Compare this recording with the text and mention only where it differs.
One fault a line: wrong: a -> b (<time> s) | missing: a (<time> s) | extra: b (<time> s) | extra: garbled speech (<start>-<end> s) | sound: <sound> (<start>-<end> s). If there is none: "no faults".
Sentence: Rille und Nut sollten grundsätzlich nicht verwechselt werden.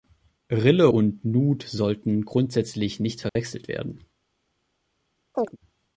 sound: dropout (3.3-3.4 s)
sound: chirp (5.3-5.6 s)